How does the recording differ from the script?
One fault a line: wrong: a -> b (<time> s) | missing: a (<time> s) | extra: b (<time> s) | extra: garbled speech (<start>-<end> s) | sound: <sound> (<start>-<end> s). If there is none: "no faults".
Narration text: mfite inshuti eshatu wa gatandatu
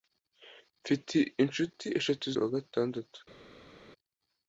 no faults